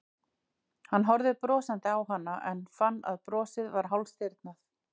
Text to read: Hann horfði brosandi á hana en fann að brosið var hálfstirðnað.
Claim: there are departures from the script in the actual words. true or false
false